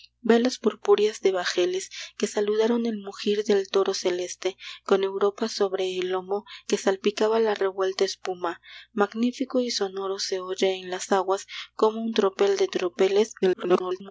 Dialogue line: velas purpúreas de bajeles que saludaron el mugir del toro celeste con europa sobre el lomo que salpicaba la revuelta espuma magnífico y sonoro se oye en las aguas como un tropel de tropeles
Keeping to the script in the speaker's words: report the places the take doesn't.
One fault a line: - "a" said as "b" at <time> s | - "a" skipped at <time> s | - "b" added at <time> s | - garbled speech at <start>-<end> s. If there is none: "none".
- garbled speech at 13.4-14.1 s